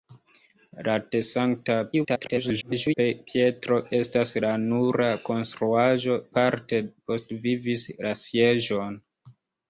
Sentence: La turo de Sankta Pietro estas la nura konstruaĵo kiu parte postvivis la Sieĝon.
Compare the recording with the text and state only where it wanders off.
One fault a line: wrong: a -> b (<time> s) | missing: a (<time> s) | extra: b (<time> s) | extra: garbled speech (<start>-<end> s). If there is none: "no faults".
missing: turo (0.9 s)
extra: garbled speech (1.9-2.9 s)
missing: kiu (6.2 s)